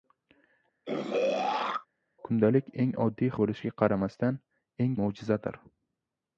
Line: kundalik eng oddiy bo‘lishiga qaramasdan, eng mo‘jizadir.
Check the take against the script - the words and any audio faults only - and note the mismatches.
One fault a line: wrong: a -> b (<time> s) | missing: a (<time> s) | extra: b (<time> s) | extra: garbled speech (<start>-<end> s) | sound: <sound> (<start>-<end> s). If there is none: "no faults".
sound: throat clearing (0.8-1.9 s)